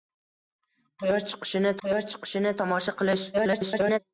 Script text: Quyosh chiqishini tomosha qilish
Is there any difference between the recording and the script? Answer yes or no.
yes